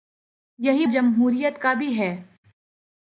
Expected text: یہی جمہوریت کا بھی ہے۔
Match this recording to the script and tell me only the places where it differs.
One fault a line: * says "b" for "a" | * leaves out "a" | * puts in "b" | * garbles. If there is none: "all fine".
all fine